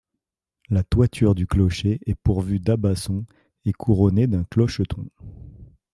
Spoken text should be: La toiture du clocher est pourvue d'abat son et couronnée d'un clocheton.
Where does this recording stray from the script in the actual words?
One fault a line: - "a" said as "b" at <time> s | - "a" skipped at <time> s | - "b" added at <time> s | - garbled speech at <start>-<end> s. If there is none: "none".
none